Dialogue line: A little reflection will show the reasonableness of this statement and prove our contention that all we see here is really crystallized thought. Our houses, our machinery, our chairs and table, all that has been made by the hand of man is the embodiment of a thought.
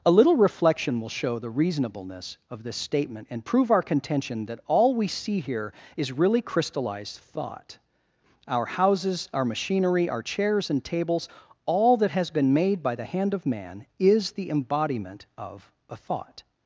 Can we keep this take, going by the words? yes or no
no